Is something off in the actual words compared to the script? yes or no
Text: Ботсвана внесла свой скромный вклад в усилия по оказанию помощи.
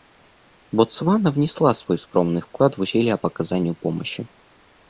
no